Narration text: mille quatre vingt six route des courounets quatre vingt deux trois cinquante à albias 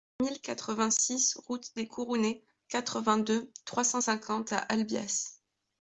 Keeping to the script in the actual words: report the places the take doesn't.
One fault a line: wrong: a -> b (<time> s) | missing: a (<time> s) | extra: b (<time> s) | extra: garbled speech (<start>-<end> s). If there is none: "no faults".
extra: cent (3.8 s)